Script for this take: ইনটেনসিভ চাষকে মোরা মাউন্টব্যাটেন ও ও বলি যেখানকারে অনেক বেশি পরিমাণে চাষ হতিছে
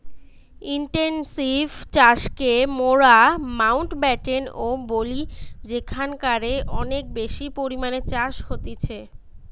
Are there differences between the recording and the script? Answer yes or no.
yes